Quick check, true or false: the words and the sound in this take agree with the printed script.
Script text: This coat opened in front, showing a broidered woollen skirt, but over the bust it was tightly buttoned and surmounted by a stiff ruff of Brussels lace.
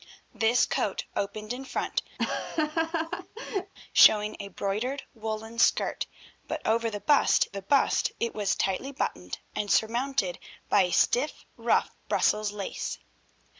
false